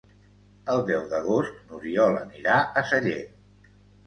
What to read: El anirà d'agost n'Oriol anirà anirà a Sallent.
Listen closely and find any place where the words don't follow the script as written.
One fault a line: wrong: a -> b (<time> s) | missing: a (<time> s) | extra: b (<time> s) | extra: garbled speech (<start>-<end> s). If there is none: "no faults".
wrong: anirà -> deu (0.9 s)
missing: anirà (2.6 s)